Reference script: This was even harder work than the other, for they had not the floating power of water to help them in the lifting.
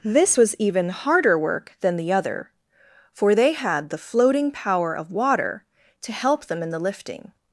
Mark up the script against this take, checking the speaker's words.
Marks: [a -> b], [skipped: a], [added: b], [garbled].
This was even harder work than the other, for they had [skipped: not] the floating power of water to help them in the lifting.